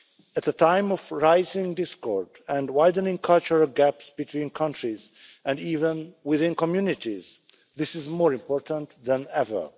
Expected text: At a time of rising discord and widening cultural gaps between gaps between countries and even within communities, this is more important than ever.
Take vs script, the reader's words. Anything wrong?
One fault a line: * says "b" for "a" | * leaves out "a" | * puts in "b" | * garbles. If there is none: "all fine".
* leaves out "gaps between"